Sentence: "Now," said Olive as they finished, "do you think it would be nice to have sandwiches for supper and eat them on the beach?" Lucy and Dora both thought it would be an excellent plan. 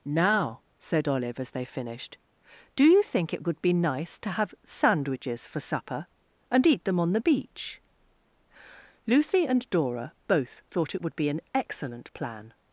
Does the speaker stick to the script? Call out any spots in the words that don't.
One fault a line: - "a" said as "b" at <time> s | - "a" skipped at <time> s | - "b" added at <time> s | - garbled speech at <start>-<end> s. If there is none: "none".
none